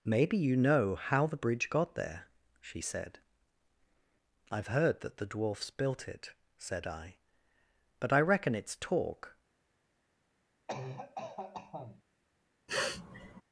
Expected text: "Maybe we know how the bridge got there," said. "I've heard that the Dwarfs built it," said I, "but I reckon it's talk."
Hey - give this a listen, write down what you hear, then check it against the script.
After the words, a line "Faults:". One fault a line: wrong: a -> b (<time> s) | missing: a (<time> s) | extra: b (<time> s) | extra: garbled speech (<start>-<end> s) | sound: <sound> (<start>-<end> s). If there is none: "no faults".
"Maybe you know how the bridge got there," she said. "I've heard that the Dwarfs built it," said I, "but I reckon it's talk."
Faults:
wrong: we -> you (0.4 s)
extra: she (2.6 s)
sound: cough (10.7-12.0 s)
sound: sniff (12.7-13.4 s)